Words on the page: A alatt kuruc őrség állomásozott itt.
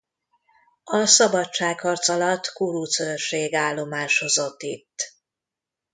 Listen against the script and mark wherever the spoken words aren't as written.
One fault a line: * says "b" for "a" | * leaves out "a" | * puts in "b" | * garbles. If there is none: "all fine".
* puts in "szabadságharc"